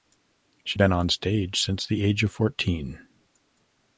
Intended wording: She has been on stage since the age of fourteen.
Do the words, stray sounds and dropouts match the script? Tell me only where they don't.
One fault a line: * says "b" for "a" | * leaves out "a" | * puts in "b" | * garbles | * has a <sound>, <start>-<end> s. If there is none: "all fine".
* leaves out "has"